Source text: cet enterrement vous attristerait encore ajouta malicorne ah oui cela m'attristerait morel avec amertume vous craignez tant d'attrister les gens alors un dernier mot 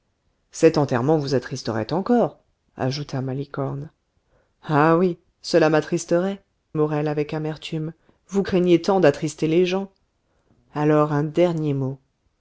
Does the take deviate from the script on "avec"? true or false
false